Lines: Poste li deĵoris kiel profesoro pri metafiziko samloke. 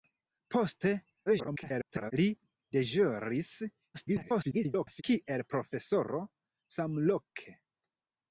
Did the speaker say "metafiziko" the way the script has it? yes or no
no